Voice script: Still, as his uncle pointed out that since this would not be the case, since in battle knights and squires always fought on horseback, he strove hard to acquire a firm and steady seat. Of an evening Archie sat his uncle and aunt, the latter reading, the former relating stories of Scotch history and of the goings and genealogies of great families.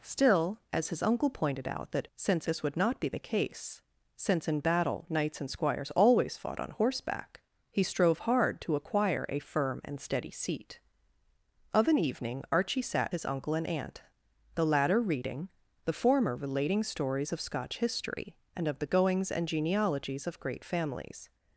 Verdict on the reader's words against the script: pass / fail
pass